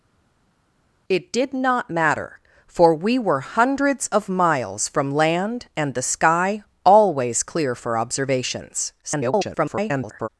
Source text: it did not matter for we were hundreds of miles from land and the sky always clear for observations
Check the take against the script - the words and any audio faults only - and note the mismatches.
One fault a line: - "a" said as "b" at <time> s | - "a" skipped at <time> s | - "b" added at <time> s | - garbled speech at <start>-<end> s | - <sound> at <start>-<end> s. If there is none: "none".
- garbled speech at 9.0-10.3 s